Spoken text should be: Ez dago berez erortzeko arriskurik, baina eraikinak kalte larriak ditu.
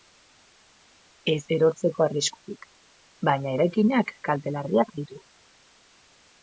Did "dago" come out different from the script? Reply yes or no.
yes